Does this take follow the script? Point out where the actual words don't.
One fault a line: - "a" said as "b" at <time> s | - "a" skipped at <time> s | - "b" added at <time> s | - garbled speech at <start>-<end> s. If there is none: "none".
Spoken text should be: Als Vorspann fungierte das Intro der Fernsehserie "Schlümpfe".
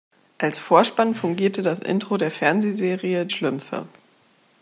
none